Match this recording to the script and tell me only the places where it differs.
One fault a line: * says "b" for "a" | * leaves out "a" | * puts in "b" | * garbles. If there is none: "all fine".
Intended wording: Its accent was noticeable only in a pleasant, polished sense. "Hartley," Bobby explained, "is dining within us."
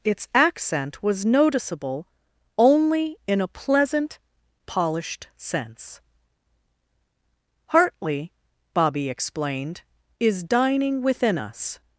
all fine